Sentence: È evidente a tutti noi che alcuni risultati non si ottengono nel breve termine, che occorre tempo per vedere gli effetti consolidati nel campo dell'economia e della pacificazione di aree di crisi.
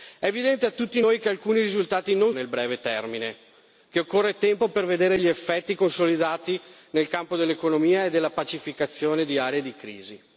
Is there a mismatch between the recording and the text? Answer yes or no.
yes